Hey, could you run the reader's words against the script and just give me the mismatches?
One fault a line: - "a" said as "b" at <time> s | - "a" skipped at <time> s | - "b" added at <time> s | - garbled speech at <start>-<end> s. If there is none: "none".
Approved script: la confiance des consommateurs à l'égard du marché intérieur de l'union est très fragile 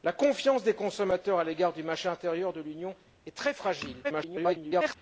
- garbled speech at 4.0-5.0 s